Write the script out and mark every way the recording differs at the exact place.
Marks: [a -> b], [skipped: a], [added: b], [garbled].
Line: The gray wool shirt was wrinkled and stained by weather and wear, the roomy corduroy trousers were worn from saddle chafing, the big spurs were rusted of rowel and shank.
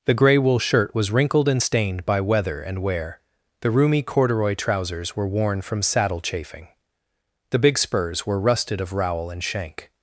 The gray wool shirt was wrinkled and stained by weather and wear, the roomy corduroy trousers were worn from saddle chafing, the big spurs were rusted of rowel and shank.